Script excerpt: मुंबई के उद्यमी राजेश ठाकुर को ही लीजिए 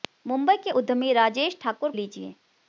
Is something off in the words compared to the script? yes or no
yes